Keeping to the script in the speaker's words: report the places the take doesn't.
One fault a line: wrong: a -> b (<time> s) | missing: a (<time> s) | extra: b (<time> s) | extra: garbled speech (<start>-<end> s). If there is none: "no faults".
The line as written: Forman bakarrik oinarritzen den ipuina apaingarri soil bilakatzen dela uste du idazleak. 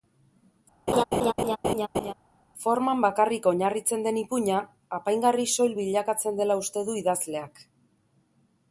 no faults